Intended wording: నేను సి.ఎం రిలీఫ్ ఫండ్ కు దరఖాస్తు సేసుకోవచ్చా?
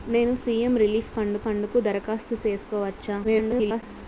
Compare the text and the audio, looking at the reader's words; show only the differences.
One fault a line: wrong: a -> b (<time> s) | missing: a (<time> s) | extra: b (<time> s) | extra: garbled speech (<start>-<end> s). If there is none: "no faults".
extra: ఫండ్ (1.4 s)
extra: garbled speech (3.2-3.8 s)